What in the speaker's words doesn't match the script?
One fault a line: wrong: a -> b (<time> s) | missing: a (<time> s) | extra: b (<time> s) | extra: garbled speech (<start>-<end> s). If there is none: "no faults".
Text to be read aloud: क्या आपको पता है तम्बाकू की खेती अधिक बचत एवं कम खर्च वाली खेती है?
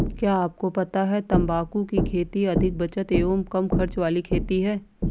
no faults